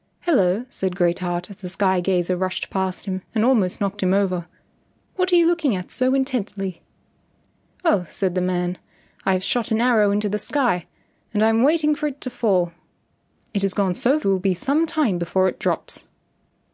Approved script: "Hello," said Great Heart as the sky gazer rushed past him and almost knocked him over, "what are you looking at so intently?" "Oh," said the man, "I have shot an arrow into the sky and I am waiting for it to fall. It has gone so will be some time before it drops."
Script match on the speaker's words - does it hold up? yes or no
yes